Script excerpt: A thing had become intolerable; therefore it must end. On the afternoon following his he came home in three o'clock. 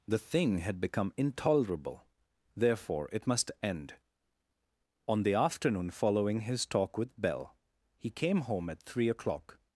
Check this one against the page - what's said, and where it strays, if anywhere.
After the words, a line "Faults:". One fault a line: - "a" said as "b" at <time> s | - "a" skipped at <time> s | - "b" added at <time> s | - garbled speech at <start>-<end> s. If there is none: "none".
The thing had become intolerable; therefore it must end. On the afternoon following his talk with Belle he came home at three o'clock.
Faults:
- "A" said as "The" at 0.1 s
- "talk with Belle" added at 6.7 s
- "in" said as "at" at 8.7 s